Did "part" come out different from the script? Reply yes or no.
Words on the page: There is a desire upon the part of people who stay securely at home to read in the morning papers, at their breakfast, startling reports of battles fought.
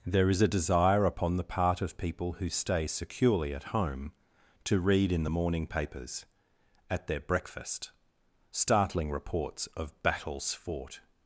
no